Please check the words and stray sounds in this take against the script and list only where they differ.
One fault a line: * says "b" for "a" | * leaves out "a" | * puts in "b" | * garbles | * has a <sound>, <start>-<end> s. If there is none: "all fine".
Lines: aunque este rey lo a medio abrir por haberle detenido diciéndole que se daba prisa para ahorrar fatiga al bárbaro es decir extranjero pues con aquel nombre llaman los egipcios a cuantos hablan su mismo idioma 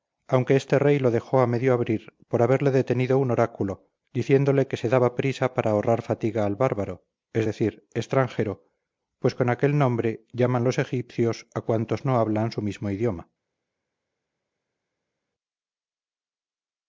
* puts in "dejó"
* puts in "un oráculo"
* puts in "no"